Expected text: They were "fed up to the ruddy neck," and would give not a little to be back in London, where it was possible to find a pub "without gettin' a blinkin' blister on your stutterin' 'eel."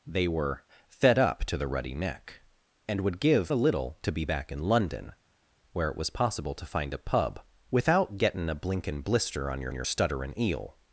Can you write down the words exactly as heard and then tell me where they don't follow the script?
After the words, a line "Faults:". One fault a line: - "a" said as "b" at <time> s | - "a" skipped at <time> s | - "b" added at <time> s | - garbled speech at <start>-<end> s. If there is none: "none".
They were "fed up to the ruddy neck," and would give a little to be back in London, where it was possible to find a pub "without gettin' a blinkin' blister on your your stutterin' 'eel."
Faults:
- "not" skipped at 3.5 s
- "your" added at 9.7 s